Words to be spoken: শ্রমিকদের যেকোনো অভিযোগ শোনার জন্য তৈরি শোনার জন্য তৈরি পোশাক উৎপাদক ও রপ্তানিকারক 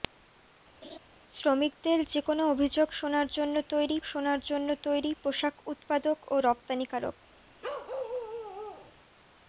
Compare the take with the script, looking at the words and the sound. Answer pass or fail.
fail